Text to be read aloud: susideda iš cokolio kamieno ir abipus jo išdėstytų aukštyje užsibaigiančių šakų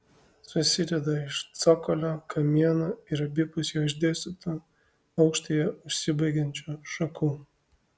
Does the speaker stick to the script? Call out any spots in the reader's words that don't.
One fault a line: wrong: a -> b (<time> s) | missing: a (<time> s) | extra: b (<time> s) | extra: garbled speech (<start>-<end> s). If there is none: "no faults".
no faults